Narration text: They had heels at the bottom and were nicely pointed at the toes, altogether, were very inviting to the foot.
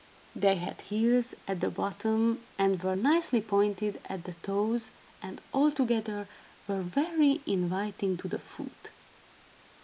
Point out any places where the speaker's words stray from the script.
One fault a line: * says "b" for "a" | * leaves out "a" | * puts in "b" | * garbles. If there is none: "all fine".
* puts in "and"